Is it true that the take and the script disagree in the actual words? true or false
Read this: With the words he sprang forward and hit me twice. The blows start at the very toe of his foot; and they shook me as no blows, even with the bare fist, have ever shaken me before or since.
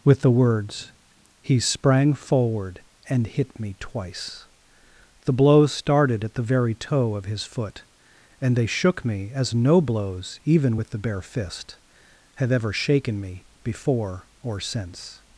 true